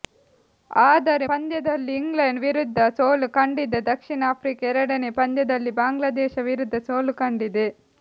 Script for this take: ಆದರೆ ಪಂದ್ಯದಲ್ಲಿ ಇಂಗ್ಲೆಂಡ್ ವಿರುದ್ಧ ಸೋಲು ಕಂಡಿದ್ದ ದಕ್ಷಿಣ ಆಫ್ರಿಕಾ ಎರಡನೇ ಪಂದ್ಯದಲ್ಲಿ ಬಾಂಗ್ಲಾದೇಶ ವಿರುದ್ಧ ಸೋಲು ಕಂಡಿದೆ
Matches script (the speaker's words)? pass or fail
pass